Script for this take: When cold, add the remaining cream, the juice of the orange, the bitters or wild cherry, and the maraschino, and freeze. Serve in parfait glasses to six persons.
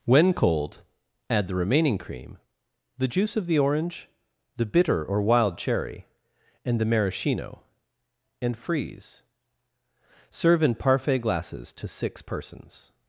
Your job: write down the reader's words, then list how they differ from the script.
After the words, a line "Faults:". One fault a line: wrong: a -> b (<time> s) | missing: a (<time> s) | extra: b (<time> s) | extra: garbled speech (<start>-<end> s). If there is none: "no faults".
When cold, add the remaining cream, the juice of the orange, the bitter or wild cherry, and the maraschino, and freeze. Serve in parfait glasses to six persons.
Faults:
wrong: bitters -> bitter (4.7 s)